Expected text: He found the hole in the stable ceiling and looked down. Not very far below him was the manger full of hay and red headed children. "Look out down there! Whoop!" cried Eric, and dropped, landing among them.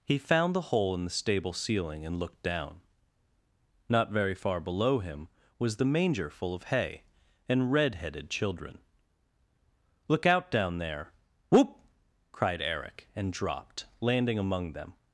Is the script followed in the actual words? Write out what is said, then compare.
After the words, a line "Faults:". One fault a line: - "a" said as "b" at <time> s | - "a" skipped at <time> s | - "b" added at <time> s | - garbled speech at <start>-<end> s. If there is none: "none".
He found the hole in the stable ceiling and looked down. Not very far below him was the manger full of hay and red headed children. "Look out down there! Whoop!" cried Eric, and dropped, landing among them.
Faults:
none